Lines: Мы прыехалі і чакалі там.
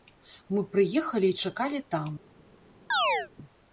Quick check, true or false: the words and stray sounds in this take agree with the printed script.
false